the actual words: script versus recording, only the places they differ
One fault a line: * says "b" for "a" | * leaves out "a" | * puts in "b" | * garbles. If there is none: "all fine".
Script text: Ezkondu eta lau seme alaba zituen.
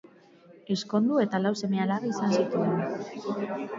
* puts in "izan"